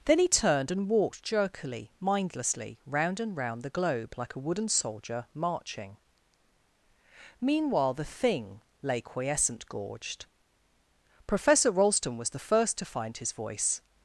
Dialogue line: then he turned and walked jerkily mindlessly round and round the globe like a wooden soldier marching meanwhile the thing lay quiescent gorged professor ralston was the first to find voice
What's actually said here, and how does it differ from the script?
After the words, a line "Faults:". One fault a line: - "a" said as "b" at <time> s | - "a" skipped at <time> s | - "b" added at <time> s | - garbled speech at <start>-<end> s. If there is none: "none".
then he turned and walked jerkily mindlessly round and round the globe like a wooden soldier marching meanwhile the thing lay quiescent gorged professor ralston was the first to find his voice
Faults:
- "his" added at 13.2 s